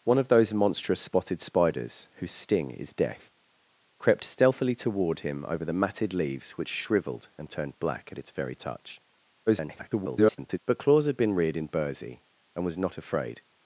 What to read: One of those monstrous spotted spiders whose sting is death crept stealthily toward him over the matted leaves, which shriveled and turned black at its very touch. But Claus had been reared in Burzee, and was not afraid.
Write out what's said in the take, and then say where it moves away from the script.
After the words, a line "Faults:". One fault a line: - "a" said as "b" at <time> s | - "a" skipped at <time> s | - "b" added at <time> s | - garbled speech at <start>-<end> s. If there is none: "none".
One of those monstrous spotted spiders whose sting is death crept stealthily toward him over the matted leaves, which shriveled and turned black at its very touch. [garbled] But Claus had been reared in Burzee, and was not afraid.
Faults:
- garbled speech at 9.5-10.6 s